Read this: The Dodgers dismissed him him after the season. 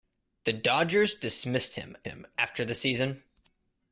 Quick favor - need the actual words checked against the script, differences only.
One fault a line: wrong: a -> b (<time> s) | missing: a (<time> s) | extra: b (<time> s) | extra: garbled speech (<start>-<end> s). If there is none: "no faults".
no faults